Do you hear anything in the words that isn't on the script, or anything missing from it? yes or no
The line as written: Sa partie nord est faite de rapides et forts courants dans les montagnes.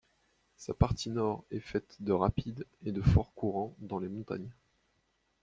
yes